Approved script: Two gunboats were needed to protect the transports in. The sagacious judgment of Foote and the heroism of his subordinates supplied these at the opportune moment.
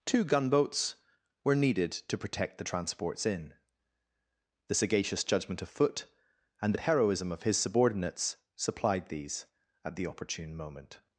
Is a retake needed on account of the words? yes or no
no